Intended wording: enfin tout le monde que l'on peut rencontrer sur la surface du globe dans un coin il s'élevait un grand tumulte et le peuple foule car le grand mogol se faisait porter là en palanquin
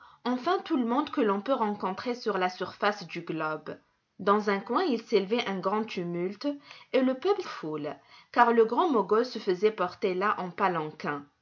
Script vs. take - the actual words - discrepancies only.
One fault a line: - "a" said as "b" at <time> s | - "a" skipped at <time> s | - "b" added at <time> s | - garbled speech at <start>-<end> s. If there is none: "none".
none